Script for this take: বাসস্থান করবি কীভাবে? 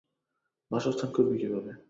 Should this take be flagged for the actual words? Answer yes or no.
no